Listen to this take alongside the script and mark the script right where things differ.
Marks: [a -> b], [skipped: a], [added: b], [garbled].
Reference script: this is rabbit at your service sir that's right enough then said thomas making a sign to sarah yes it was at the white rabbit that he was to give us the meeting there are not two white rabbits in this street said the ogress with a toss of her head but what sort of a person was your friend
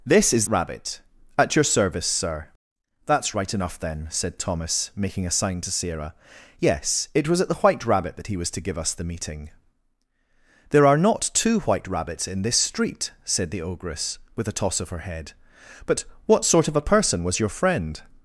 this is rabbit at your service sir that's right enough then said thomas making a sign to sarah yes it was at the white rabbit that he was to give us the meeting there are not two white rabbits in this street said the ogress with a toss of her head but what sort of a person was your friend